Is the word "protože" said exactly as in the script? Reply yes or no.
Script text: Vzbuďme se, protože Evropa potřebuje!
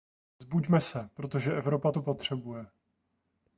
yes